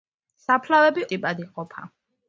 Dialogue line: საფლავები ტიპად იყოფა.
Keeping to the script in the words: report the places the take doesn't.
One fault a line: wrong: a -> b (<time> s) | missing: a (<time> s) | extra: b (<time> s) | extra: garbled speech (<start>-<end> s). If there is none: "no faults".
no faults